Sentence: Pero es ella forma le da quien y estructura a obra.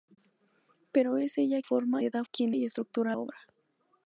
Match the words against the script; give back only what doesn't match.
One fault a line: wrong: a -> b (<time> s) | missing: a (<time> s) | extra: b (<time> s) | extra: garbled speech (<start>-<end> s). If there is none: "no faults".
no faults